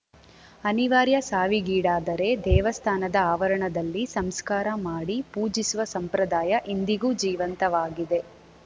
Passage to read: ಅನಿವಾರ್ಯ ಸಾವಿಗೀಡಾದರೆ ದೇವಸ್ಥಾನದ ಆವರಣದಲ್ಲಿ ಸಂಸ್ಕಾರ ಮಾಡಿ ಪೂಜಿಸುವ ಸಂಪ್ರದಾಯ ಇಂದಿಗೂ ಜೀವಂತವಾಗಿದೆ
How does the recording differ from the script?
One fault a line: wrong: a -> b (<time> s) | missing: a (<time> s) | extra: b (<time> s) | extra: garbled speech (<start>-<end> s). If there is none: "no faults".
no faults